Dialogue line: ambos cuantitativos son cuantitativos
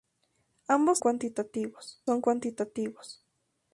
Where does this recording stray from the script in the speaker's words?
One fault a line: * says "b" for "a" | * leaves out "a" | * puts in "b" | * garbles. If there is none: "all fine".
all fine